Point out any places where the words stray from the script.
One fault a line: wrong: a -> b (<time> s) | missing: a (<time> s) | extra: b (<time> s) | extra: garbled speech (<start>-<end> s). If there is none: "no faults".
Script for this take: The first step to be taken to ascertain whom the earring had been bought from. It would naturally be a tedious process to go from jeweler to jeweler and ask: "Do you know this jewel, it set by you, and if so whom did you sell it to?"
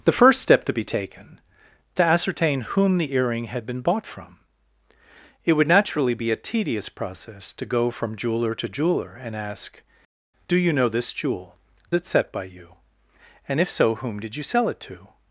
no faults